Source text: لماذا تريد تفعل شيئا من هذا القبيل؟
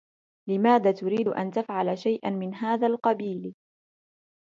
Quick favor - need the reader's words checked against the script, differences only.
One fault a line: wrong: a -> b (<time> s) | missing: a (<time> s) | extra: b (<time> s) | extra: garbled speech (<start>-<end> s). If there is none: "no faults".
extra: أن (1.3 s)